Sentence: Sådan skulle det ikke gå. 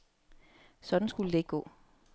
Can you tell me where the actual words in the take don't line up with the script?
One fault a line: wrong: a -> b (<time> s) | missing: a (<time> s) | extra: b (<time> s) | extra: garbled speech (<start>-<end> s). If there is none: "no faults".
no faults